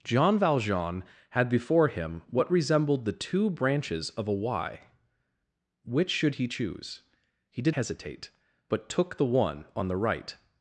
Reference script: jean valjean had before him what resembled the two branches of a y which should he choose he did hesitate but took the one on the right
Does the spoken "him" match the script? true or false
true